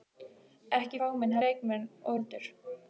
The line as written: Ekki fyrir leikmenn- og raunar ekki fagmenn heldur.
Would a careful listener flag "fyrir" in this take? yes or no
yes